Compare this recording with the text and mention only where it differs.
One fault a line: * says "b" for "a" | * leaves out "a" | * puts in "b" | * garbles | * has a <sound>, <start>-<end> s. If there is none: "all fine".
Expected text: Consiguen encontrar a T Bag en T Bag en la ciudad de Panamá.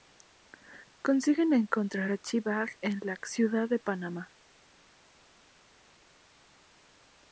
* leaves out "T Bag en"